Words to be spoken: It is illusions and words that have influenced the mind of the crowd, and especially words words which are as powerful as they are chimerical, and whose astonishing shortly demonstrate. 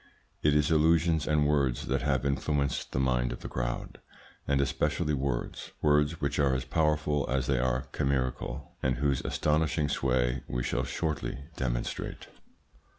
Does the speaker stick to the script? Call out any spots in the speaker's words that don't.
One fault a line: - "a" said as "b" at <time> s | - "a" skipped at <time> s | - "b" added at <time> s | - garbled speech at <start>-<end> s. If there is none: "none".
- "sway we shall" added at 9.9 s